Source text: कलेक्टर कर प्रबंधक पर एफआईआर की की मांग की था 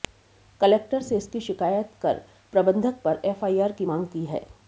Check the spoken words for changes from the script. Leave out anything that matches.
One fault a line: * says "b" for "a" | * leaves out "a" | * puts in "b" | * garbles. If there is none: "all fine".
* puts in "से इसकी शिकायत"
* leaves out "की"
* says "है" for "था"